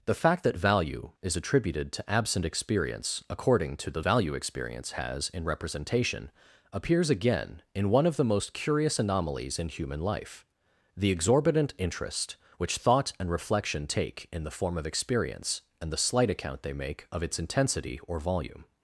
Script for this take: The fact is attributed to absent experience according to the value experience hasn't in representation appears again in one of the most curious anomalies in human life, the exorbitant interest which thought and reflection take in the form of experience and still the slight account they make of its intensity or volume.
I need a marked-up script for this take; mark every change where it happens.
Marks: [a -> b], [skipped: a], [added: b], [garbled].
The fact [added: that value] is attributed to absent experience according to the value experience [hasn't -> has] in representation appears again in one of the most curious anomalies in human life, the exorbitant interest which thought and reflection take in the form of experience and [skipped: still] the slight account they make of its intensity or volume.